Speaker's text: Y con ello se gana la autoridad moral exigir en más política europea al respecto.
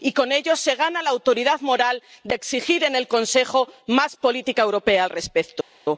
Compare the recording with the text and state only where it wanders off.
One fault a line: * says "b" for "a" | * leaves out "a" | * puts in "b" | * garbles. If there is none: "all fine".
* puts in "de"
* puts in "el Consejo"